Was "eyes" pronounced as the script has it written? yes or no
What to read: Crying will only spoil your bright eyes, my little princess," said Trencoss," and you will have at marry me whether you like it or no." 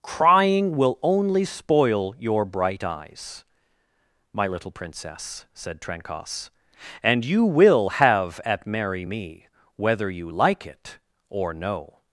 yes